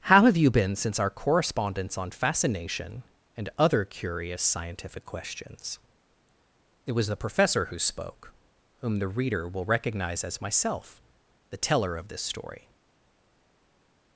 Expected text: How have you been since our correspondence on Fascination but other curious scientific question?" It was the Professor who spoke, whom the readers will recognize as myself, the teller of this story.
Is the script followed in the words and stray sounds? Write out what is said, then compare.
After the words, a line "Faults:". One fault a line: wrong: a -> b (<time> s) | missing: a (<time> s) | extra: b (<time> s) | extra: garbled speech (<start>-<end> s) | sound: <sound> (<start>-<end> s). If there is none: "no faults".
How have you been since our correspondence on Fascination and other curious scientific questions?" It was the Professor who spoke, whom the reader will recognize as myself, the teller of this story.
Faults:
wrong: but -> and (3.4 s)
wrong: question -> questions (5.0 s)
wrong: readers -> reader (9.1 s)